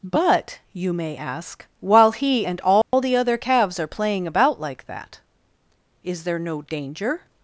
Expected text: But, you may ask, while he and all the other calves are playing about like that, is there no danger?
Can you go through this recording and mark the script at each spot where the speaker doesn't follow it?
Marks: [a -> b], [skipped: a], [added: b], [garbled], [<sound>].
But, you may ask, while he and all [dropout] the other calves are playing about like that, is there no danger?